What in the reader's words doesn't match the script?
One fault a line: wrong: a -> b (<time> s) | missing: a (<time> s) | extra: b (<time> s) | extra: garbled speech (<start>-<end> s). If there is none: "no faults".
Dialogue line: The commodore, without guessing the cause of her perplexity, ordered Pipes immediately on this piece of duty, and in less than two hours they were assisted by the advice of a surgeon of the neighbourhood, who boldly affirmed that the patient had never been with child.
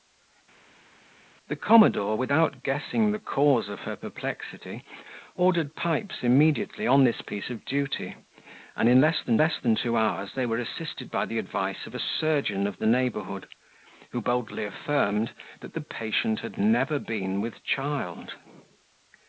extra: less than (9.4 s)